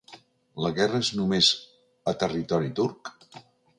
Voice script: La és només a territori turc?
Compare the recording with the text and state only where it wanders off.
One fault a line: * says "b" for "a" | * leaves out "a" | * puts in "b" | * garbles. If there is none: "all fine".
* puts in "guerra"